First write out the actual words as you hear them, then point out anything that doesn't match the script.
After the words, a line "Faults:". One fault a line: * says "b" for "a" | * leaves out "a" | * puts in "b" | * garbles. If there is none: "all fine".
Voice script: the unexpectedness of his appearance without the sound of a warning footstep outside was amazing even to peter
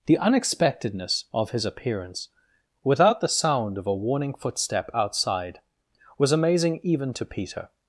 the unexpectedness of his appearance without the sound of a warning footstep outside was amazing even to peter
Faults:
all fine